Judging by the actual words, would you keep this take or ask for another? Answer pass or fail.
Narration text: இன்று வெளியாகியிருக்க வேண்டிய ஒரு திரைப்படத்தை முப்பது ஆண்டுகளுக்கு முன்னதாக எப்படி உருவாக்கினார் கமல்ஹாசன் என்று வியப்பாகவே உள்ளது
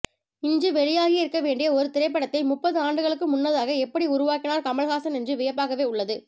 pass